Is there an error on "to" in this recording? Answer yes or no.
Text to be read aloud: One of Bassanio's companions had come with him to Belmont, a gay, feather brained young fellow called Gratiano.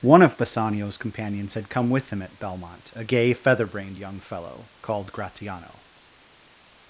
yes